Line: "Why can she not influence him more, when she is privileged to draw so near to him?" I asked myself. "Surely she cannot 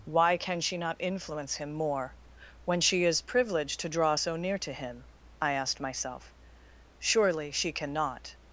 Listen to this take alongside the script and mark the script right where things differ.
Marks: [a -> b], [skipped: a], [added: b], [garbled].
"Why can she not influence him more, when she is privileged to draw so near to him?" I asked myself. "Surely she cannot